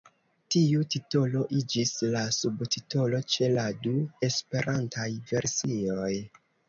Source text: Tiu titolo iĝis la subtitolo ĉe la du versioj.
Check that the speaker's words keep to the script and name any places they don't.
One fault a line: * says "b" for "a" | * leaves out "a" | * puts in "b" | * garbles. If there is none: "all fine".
* puts in "esperantaj"